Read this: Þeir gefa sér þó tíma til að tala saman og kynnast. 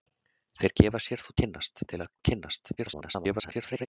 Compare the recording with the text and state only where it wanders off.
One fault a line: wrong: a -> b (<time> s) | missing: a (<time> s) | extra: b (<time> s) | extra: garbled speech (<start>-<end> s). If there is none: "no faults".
wrong: tíma -> kynnast (1.4 s)
missing: tala saman (2.1 s)
extra: garbled speech (2.8-3.9 s)